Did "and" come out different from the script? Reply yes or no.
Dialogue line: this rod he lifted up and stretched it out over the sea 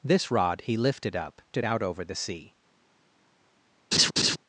yes